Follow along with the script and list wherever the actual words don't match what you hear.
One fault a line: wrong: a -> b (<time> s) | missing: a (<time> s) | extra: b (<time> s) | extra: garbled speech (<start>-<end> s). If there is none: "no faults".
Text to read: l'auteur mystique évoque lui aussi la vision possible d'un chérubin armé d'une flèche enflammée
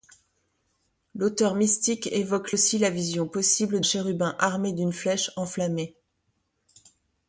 missing: lui (2.5 s)
missing: d'un (3.8 s)